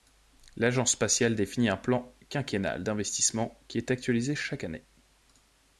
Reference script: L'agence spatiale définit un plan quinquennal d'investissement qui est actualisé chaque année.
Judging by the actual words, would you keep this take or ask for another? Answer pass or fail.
pass